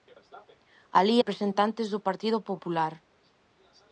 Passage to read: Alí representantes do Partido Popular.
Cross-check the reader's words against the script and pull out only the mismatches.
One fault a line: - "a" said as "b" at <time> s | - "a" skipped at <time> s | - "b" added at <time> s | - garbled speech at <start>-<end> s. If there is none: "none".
none